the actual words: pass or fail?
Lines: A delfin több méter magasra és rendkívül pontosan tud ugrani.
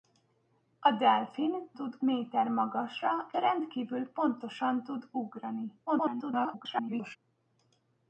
fail